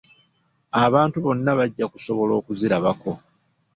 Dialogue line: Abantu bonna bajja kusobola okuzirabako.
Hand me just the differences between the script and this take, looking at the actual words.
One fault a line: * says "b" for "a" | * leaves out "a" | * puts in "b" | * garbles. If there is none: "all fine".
all fine